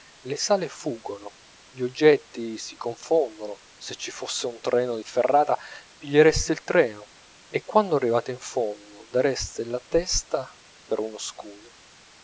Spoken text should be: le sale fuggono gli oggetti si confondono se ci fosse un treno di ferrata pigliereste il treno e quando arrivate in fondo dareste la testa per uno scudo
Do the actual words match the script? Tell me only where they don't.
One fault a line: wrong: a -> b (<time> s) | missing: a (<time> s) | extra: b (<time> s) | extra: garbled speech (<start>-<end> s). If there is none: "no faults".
no faults